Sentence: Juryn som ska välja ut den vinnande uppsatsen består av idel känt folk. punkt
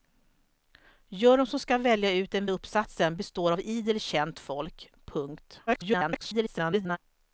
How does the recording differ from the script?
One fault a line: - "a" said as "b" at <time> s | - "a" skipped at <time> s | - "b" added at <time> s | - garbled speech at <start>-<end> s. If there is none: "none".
- "vinnande" skipped at 2.5 s
- garbled speech at 5.7-7.0 s